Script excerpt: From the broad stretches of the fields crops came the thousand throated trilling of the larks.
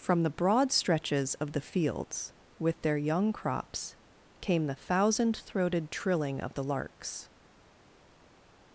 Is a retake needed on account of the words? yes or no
yes